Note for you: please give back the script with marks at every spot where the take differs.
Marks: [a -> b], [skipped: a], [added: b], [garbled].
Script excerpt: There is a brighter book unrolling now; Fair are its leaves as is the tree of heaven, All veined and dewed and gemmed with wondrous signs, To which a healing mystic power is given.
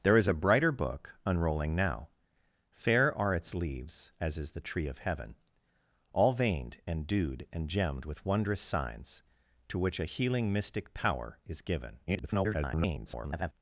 There is a brighter book unrolling now; Fair are its leaves as is the tree of heaven, All veined and dewed and gemmed with wondrous signs, To which a healing mystic power is given. [garbled]